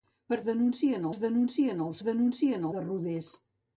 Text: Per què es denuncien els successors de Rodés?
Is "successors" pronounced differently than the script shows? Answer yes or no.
yes